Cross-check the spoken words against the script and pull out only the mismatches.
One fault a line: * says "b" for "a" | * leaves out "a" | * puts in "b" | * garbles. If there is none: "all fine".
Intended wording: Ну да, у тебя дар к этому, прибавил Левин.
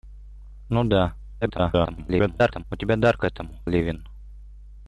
* garbles
* leaves out "прибавил"